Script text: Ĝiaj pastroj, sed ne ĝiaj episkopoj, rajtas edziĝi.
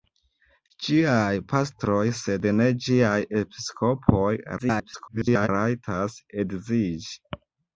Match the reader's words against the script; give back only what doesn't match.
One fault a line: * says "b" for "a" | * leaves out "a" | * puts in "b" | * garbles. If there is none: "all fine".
* garbles